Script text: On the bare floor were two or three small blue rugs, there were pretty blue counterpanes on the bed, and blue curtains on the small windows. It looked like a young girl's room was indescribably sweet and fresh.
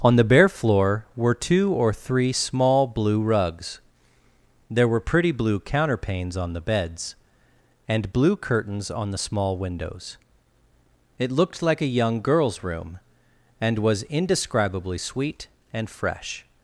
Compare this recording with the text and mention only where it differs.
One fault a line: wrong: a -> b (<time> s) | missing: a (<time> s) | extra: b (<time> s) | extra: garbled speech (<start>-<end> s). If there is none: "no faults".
wrong: bed -> beds (6.6 s)
extra: and (13.6 s)